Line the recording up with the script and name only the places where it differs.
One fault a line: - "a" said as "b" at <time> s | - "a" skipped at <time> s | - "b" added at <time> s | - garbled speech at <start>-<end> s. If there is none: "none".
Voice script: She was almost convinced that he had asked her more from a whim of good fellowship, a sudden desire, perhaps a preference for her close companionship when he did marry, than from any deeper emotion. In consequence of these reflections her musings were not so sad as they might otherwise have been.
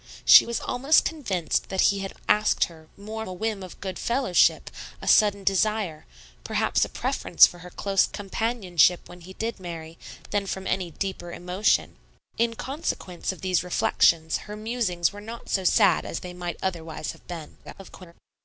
- "from" skipped at 3.3 s
- garbled speech at 17.6-18.1 s